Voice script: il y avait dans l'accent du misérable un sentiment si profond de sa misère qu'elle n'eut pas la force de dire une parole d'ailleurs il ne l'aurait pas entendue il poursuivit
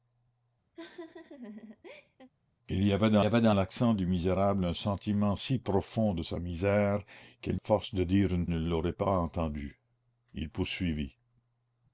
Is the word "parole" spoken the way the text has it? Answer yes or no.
no